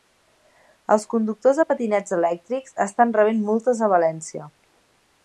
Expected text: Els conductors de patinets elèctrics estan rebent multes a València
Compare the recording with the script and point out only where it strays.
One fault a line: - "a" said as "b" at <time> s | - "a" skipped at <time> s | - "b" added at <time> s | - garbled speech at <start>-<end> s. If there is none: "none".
none